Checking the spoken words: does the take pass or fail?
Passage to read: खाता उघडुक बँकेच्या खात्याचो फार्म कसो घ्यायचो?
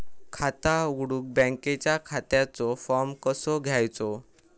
pass